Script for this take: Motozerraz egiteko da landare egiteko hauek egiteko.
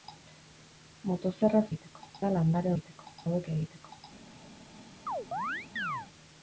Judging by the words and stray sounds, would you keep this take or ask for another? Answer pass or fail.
fail